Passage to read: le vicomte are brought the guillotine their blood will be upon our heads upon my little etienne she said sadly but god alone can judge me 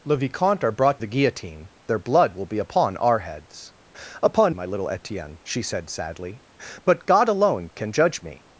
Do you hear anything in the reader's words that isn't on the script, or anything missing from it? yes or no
no